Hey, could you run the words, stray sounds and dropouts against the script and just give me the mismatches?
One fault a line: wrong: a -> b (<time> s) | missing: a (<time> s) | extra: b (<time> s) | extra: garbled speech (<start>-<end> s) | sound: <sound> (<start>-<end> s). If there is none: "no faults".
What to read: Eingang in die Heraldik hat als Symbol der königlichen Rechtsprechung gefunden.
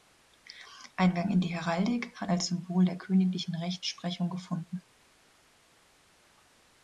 no faults